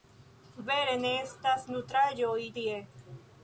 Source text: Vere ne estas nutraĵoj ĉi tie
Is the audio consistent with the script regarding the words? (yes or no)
no